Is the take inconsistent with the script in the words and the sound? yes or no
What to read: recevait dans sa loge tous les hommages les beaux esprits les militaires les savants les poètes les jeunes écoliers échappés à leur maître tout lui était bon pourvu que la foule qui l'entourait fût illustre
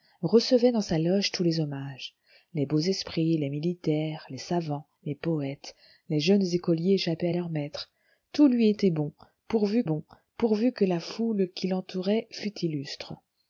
yes